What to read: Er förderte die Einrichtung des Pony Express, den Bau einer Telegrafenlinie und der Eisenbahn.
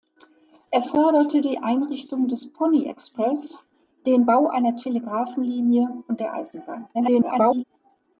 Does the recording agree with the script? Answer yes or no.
no